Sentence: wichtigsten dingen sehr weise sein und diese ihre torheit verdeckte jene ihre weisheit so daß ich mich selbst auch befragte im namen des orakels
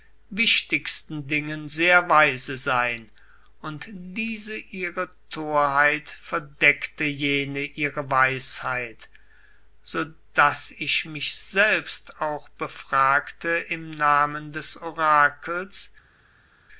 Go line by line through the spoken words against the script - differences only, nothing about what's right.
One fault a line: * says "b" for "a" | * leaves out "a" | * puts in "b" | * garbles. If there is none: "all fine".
all fine